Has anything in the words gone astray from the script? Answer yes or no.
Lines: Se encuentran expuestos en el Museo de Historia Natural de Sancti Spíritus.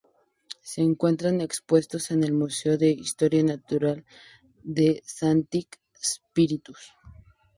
no